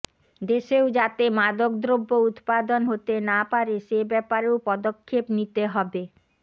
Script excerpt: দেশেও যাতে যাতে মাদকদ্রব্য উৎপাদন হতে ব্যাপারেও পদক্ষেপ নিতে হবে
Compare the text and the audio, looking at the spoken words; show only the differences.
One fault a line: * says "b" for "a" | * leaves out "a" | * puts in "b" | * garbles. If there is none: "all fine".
* leaves out "যাতে"
* puts in "না পারে সে"